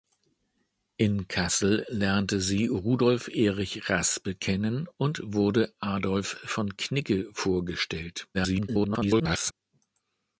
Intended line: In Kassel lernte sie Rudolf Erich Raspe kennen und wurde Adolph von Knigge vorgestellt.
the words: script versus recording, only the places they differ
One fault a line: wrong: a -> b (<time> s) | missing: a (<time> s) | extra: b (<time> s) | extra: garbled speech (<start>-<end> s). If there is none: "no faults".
extra: garbled speech (8.3-9.5 s)